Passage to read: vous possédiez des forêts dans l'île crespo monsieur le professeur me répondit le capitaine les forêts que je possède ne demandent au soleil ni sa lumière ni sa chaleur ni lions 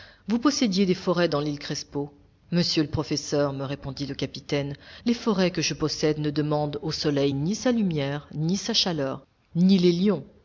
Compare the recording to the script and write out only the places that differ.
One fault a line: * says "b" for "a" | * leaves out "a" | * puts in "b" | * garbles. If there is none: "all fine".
* puts in "les"